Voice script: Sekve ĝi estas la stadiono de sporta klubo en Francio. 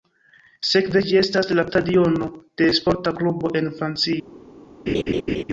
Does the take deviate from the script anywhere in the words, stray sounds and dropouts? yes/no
yes